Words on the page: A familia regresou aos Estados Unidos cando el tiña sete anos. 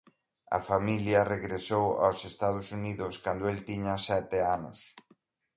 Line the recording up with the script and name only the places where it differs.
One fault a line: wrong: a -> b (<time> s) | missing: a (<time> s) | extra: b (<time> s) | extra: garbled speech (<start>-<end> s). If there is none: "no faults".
no faults